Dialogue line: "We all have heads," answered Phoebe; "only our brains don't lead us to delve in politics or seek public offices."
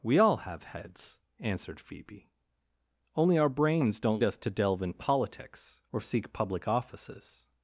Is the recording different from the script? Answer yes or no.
yes